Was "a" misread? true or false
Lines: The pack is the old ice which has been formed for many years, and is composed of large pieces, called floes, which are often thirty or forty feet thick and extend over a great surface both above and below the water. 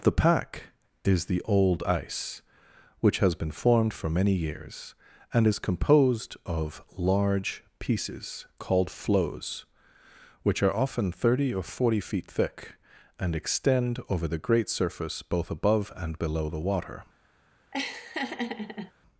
true